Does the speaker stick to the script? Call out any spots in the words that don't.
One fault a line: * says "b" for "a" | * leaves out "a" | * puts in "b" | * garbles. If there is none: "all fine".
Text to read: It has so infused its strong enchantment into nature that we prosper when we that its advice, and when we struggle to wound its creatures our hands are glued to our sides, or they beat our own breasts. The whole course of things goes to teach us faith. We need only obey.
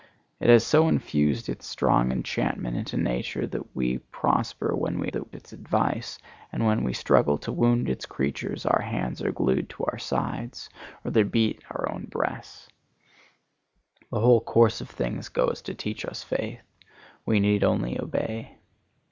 all fine